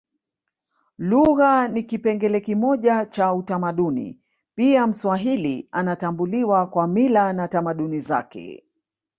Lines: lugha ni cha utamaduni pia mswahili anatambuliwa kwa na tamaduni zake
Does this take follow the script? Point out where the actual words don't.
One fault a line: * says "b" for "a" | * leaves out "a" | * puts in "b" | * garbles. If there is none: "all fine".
* puts in "kipengele kimoja"
* puts in "mila"